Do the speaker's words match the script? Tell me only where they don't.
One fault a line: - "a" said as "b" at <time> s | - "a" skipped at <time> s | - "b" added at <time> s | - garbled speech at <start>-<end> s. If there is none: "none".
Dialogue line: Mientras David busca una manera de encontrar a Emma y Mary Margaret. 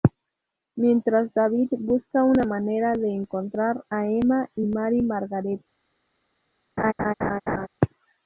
none